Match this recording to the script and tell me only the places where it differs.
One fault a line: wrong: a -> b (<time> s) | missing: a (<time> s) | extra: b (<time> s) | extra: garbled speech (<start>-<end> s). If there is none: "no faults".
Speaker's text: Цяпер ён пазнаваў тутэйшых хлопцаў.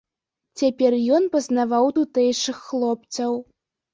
no faults